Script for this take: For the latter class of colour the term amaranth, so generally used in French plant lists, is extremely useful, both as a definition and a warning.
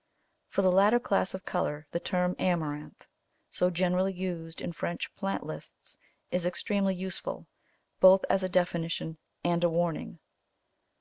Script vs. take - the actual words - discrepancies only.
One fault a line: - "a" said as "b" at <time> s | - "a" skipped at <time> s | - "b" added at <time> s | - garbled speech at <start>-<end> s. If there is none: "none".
none